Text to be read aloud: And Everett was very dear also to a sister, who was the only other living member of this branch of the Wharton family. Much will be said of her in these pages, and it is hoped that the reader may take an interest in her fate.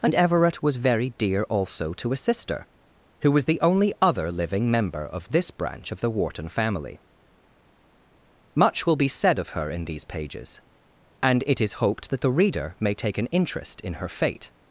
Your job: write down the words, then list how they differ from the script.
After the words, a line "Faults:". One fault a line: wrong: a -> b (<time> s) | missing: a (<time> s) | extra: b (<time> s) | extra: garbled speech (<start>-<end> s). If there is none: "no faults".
And Everett was very dear also to a sister, who was the only other living member of this branch of the Wharton family. Much will be said of her in these pages, and it is hoped that the reader may take an interest in her fate.
Faults:
no faults